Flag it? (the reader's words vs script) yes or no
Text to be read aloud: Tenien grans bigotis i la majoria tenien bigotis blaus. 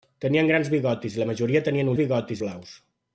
no